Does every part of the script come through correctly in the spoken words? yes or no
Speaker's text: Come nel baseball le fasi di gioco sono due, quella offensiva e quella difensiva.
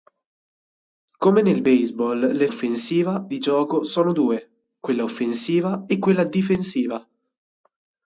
no